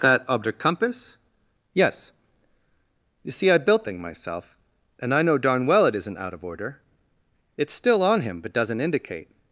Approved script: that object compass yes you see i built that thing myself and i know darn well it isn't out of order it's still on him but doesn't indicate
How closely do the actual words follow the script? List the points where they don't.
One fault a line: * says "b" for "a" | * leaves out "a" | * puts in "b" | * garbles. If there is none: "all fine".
* leaves out "that"